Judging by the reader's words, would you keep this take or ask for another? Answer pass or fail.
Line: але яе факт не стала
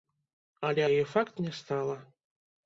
pass